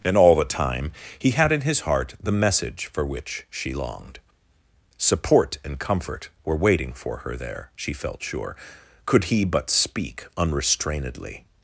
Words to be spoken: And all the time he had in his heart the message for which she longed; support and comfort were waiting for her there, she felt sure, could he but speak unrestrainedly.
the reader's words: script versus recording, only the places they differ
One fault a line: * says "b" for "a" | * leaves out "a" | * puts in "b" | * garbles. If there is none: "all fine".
all fine